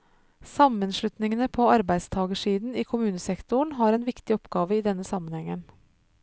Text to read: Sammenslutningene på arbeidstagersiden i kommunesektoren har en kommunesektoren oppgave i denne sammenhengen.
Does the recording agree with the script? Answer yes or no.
no